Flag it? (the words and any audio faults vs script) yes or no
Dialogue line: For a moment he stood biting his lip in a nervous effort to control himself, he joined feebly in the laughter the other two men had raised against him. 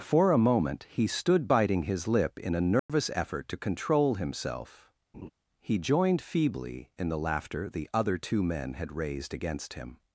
yes